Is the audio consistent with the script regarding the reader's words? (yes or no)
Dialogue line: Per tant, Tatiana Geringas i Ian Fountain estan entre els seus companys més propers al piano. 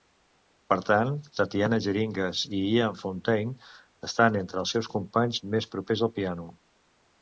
yes